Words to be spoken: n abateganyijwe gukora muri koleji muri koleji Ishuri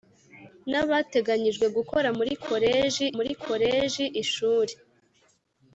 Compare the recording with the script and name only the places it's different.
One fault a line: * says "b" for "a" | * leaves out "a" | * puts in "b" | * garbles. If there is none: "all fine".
all fine